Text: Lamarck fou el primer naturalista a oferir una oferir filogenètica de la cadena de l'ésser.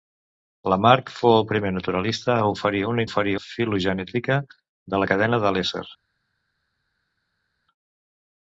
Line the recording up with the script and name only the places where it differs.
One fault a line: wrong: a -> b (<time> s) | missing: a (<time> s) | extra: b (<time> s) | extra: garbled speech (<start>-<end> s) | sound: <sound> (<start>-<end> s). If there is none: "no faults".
no faults